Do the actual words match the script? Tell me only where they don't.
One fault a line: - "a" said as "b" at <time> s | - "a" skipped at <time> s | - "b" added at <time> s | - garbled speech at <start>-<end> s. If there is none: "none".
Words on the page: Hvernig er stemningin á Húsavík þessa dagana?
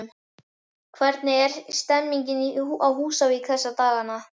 none